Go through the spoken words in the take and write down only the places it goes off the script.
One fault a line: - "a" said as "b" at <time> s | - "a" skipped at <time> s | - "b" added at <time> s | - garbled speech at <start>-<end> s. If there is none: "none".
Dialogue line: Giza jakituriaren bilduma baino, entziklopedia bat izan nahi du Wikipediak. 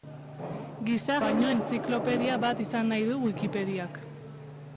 - "jakituriaren bilduma" skipped at 1.2 s